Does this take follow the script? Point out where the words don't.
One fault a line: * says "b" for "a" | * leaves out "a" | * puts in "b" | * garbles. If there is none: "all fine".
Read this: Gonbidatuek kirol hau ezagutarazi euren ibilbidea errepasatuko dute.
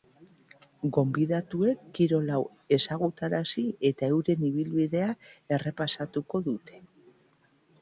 * puts in "eta"